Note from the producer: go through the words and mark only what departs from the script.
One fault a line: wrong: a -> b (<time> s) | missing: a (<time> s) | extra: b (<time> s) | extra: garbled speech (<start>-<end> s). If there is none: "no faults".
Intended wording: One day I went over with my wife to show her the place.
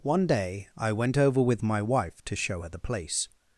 no faults